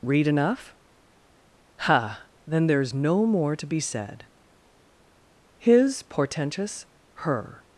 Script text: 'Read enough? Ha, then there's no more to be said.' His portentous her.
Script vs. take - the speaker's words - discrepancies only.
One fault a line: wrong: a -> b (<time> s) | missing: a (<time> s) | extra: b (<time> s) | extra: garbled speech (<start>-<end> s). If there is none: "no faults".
no faults